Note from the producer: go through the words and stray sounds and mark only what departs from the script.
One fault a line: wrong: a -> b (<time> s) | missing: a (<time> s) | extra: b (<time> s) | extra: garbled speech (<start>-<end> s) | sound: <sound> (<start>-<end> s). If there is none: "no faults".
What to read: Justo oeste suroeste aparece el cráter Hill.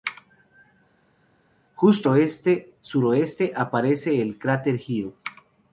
no faults